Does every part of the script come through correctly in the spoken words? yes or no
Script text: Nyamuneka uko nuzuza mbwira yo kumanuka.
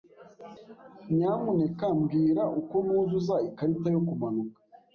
no